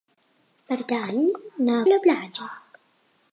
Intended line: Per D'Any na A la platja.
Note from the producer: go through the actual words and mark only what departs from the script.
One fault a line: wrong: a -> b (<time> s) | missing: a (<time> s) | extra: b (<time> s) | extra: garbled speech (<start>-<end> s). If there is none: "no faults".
no faults